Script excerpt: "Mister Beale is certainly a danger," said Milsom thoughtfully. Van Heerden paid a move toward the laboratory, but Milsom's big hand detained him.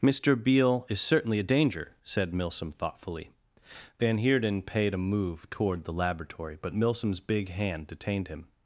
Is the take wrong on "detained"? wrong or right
right